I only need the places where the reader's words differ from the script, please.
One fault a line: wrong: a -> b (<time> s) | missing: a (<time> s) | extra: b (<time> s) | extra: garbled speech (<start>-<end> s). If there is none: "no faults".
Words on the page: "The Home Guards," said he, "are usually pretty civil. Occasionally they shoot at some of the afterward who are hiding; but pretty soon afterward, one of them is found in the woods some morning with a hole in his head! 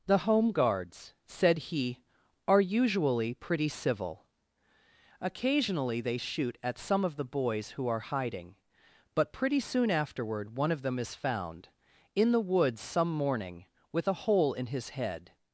wrong: afterward -> boys (7.3 s)